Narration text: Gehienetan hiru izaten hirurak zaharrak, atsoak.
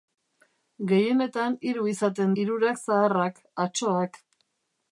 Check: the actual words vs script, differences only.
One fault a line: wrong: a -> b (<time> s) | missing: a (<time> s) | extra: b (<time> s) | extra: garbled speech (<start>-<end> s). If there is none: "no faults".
no faults